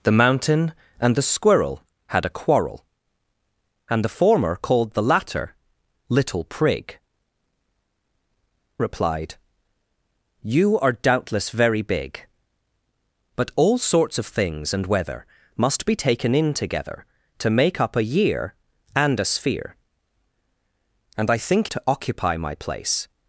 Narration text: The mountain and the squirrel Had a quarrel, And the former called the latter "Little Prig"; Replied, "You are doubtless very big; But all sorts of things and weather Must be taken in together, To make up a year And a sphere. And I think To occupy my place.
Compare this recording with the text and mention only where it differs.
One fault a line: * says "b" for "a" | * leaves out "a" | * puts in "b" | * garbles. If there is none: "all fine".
all fine